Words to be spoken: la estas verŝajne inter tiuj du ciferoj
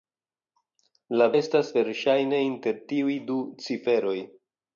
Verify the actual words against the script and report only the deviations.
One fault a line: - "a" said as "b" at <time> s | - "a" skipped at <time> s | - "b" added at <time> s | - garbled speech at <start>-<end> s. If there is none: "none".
none